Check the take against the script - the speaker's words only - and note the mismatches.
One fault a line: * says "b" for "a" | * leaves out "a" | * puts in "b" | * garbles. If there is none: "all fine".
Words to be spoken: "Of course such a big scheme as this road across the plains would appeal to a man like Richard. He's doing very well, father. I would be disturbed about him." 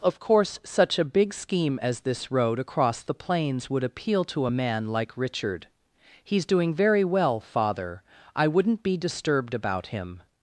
* says "wouldn't" for "would"